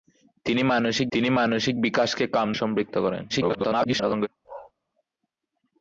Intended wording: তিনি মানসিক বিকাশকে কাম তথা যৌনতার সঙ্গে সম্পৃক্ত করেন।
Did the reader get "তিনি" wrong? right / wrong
right